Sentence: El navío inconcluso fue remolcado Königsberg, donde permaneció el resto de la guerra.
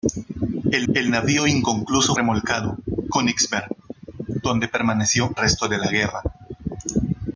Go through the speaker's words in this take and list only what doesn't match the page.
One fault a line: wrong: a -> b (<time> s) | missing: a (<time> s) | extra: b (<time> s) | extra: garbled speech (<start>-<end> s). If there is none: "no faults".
extra: el (0.9 s)
missing: fue (2.2 s)
missing: el (5.3 s)